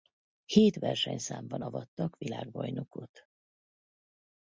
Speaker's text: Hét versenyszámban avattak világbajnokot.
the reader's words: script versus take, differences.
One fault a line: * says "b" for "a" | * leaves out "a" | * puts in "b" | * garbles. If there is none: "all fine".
all fine